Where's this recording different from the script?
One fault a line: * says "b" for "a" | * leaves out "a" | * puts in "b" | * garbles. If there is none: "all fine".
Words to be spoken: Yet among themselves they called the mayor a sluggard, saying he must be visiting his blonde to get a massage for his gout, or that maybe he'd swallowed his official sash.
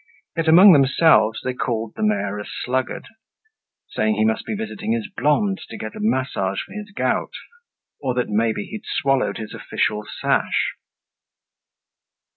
all fine